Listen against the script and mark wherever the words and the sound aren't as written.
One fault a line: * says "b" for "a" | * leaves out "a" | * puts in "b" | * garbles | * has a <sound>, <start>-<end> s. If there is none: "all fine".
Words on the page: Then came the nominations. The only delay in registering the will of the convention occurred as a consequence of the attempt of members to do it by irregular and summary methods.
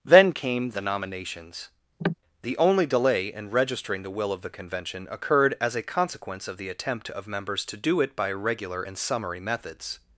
* has a cough, 2.0-2.1 s
* says "regular" for "irregular"